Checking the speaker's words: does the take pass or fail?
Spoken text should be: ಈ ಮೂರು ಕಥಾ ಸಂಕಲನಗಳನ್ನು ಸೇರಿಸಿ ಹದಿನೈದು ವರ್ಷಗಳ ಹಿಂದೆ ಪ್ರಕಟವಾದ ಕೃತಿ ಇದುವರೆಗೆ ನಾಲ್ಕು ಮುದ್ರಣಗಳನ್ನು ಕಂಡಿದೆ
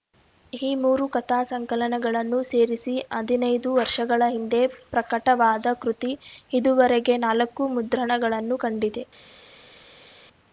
pass